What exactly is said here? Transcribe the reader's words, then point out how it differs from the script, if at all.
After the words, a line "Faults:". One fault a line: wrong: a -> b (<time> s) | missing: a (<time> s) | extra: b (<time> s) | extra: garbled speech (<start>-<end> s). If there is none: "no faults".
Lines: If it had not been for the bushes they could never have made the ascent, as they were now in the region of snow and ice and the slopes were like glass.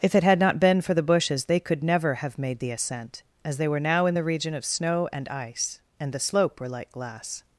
If it had not been for the bushes they could never have made the ascent, as they were now in the region of snow and ice and the slope were like glass.
Faults:
wrong: slopes -> slope (6.2 s)